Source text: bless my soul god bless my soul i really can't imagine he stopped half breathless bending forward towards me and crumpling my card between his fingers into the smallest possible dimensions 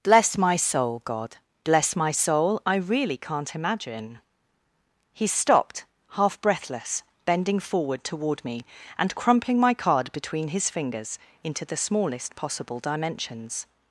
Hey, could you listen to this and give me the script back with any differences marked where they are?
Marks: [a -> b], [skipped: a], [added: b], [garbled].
bless my soul god bless my soul i really can't imagine he stopped half breathless bending forward [towards -> toward] me and crumpling my card between his fingers into the smallest possible dimensions